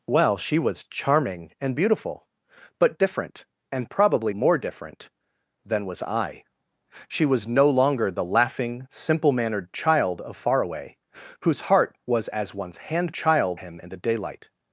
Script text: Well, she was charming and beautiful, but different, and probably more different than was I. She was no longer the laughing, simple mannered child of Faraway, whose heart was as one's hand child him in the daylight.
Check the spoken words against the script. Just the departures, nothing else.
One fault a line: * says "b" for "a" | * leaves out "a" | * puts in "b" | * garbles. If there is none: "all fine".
all fine